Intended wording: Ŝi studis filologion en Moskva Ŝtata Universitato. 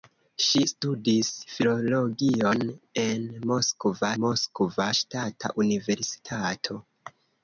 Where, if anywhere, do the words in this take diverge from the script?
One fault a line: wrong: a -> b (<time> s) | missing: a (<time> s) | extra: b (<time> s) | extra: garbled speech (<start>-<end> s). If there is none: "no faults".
extra: Moskva (4.2 s)